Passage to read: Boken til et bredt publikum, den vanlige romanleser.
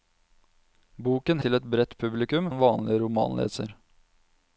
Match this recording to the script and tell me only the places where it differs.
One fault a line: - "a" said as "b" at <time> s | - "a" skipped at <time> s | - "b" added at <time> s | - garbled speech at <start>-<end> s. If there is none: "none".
none